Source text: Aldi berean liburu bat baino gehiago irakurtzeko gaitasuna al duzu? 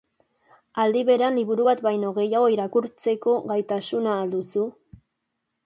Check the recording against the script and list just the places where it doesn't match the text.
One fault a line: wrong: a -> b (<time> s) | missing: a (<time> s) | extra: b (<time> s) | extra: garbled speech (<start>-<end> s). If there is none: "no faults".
no faults